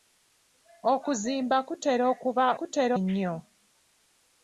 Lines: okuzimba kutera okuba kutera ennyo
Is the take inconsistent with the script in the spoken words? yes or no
no